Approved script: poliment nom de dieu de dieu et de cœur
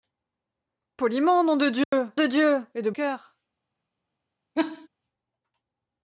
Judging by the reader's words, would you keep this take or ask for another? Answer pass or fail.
pass